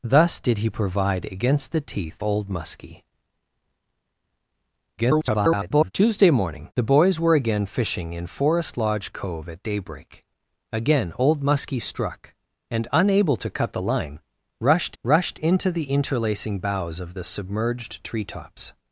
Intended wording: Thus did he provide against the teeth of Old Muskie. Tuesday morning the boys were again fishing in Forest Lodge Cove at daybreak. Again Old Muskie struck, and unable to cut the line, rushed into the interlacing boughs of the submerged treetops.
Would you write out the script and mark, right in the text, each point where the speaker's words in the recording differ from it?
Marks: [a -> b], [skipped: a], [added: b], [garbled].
Thus did he provide against the teeth [skipped: of] Old Muskie. [garbled] Tuesday morning the boys were again fishing in Forest Lodge Cove at daybreak. Again Old Muskie struck, and unable to cut the line, rushed [added: rushed] into the interlacing boughs of the submerged treetops.